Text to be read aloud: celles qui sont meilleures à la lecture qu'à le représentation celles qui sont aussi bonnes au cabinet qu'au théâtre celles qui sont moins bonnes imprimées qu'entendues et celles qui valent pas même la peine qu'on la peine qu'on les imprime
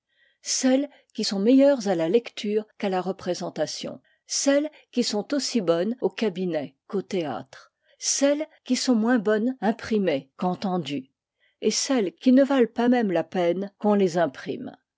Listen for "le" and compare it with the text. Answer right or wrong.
wrong